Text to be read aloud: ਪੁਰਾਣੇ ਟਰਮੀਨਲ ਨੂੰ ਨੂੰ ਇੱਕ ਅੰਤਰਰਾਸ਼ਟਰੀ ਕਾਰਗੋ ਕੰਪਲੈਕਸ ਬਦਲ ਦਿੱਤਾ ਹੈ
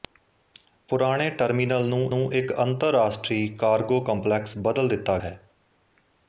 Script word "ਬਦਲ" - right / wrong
right